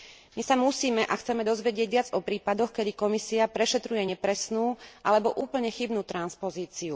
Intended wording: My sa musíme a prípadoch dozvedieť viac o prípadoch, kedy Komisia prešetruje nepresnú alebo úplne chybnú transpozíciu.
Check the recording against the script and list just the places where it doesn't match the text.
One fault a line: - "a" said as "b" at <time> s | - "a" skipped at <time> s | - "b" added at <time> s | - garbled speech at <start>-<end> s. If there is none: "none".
- "prípadoch" said as "chceme" at 1.1 s